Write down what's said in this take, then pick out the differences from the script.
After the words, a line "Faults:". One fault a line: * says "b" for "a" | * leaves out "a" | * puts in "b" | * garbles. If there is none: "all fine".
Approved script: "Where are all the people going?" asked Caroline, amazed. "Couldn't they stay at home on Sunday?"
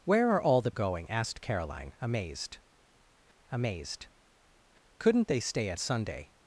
"Where are all the going?" asked Caroline, amazed amazed. "Couldn't they stay at Sunday?"
Faults:
* leaves out "people"
* puts in "amazed"
* leaves out "home on"